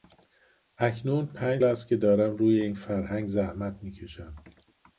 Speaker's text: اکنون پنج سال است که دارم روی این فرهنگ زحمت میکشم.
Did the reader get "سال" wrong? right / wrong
wrong